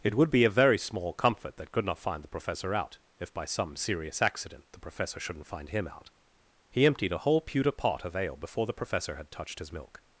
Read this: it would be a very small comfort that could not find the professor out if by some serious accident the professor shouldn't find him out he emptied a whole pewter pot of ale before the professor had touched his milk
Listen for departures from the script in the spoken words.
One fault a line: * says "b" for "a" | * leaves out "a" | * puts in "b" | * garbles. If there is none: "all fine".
all fine